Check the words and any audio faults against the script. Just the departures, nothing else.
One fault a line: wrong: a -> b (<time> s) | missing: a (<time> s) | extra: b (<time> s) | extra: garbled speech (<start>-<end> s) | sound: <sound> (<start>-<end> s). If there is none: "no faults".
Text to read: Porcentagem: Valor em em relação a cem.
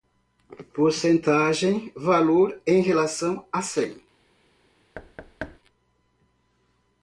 missing: em (2.8 s)
sound: thud (4.9-5.6 s)